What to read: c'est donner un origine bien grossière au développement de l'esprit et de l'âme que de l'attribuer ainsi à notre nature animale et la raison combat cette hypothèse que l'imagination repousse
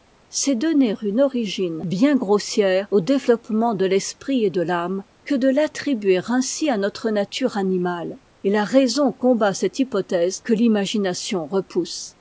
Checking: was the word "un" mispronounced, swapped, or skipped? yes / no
yes